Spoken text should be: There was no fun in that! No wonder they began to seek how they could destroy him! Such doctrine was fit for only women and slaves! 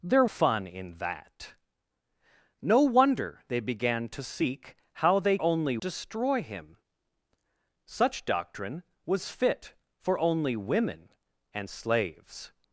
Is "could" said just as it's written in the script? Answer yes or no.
no